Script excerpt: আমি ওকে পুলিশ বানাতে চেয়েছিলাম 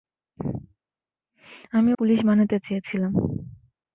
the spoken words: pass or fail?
fail